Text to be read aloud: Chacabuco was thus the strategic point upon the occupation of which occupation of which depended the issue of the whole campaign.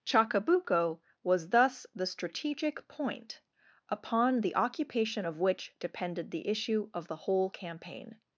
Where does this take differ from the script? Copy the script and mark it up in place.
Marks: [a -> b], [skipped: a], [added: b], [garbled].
Chacabuco was thus the strategic point upon the occupation of which [skipped: occupation of which] depended the issue of the whole campaign.